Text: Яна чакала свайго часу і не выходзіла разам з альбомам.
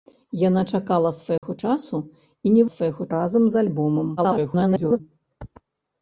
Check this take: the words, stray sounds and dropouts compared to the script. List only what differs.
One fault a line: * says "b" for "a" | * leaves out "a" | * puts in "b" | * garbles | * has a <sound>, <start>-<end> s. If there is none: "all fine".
* has a dropout, 1.4-1.4 s
* says "свайго" for "выходзіла"
* garbles